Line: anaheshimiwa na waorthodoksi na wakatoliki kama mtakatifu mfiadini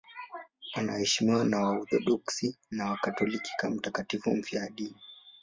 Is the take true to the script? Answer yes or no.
yes